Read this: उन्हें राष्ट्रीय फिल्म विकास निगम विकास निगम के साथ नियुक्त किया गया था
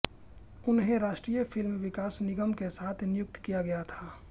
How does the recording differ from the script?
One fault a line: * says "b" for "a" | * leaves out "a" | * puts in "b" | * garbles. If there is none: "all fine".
* leaves out "विकास निगम"